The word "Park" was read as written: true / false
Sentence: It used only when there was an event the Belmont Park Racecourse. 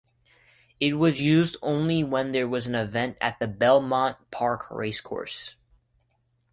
true